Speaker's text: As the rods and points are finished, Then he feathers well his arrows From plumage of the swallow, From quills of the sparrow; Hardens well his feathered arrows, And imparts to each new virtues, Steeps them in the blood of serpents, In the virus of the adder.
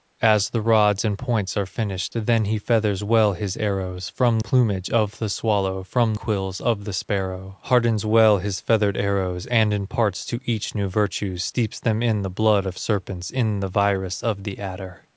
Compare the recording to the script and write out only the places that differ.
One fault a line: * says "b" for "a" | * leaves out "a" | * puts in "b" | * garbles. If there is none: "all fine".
all fine